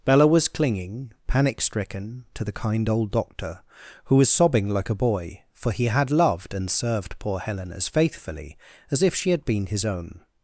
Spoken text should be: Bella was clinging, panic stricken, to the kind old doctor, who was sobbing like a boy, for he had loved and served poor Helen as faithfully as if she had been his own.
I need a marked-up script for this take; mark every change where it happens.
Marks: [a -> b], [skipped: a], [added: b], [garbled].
Bella was clinging, panic stricken, to the kind old doctor, who was sobbing like a boy, for he had loved and served poor Helen as faithfully as if she had been his own.